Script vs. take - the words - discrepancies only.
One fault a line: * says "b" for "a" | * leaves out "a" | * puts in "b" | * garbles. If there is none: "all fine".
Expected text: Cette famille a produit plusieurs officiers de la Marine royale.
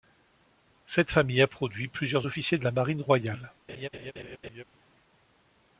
all fine